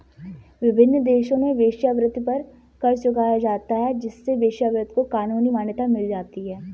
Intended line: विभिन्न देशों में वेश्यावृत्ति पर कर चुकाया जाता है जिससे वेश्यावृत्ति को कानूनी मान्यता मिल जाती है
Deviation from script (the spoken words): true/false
false